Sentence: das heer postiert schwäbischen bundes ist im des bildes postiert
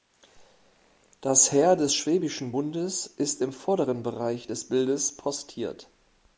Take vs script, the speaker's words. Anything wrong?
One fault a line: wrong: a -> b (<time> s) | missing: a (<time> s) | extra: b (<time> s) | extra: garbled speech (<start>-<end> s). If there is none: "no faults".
wrong: postiert -> des (1.8 s)
extra: vorderen bereich (3.5 s)